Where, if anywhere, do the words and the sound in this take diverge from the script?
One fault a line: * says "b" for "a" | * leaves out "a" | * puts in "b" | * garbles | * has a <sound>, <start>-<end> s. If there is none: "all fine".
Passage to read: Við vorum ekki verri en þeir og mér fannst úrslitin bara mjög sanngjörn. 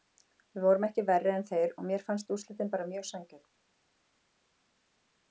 all fine